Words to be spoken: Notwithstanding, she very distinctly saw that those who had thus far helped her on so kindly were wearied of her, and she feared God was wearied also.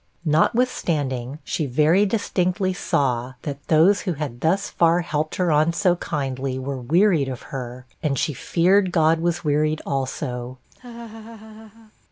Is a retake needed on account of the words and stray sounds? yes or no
yes